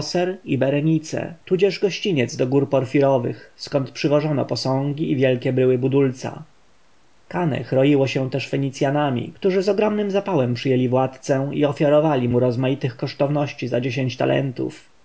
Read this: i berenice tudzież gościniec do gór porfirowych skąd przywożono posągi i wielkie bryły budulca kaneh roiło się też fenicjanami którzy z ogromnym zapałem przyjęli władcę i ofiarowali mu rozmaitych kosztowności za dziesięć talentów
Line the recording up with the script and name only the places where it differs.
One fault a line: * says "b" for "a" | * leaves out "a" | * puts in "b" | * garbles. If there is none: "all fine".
all fine